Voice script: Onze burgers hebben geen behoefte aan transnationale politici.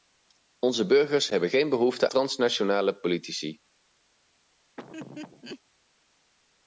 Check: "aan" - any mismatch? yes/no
yes